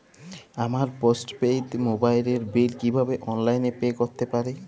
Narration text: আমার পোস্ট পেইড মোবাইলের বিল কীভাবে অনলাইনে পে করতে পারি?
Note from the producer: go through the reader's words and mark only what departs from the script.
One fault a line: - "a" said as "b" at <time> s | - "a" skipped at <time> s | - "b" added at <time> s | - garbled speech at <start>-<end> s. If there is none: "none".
none